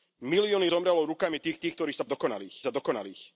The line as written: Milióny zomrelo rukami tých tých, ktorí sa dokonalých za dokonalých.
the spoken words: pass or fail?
pass